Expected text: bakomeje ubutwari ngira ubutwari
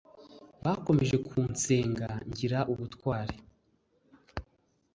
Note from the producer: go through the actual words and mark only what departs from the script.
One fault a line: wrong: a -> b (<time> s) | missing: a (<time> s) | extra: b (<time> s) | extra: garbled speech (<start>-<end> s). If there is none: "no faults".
wrong: ubutwari -> kunsenga (1.3 s)